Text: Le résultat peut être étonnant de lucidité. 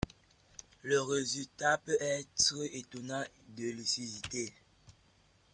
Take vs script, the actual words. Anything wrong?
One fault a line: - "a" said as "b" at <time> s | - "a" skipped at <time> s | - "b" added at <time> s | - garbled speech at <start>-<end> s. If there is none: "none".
none